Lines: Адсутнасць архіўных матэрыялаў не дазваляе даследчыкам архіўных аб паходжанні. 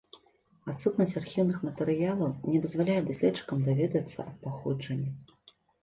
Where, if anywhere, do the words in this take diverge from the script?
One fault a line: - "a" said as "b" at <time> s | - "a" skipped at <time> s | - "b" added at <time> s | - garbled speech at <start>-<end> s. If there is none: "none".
- "архіўных" said as "даведацца" at 3.7 s